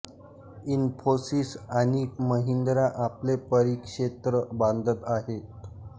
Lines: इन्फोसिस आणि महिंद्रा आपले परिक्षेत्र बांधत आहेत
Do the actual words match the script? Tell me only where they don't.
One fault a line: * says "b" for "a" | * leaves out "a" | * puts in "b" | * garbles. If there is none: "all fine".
all fine